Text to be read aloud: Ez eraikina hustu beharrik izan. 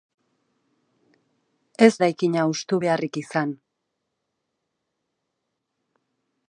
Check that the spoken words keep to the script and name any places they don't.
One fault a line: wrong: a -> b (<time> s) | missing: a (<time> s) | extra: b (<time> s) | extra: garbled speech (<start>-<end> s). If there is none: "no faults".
no faults